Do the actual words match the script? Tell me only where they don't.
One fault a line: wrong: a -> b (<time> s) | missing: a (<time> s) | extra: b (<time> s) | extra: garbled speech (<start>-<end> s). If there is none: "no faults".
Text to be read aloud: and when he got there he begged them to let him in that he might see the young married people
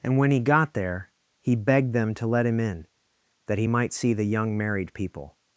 no faults